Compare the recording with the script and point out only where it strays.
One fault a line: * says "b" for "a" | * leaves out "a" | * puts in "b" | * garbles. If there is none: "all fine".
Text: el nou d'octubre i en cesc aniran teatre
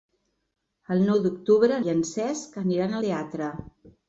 all fine